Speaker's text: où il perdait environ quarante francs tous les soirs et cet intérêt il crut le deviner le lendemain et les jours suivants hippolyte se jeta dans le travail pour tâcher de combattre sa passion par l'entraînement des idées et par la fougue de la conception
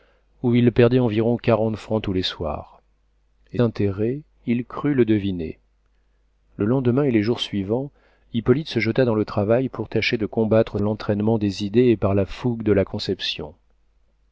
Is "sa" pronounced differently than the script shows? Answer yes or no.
yes